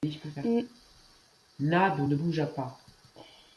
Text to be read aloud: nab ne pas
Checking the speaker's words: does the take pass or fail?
fail